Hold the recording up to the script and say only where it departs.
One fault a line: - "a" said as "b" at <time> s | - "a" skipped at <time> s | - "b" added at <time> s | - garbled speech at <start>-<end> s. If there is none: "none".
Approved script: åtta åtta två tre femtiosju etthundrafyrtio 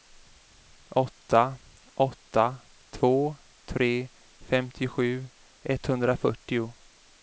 none